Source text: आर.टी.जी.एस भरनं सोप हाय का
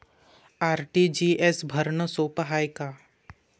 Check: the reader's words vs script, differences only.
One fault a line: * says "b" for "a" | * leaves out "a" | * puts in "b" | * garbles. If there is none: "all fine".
all fine